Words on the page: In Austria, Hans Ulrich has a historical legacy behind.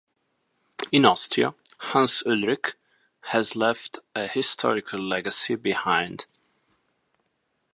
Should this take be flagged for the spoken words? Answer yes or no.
yes